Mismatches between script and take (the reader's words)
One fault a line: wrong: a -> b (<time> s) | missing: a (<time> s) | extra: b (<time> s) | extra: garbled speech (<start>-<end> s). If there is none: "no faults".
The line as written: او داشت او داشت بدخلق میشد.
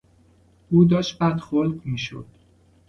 missing: او داشت (1.2 s)